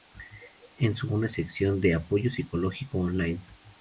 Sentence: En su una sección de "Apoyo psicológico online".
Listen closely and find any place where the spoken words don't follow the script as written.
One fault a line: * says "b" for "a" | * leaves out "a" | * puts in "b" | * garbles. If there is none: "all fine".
all fine